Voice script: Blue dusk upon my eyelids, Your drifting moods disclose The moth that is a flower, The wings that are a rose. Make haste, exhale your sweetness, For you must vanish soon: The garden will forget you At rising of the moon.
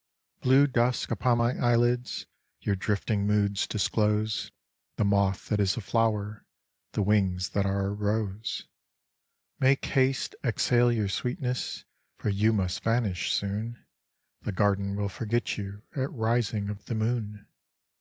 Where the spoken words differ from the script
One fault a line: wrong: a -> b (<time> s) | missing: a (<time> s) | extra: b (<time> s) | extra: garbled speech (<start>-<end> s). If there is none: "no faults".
no faults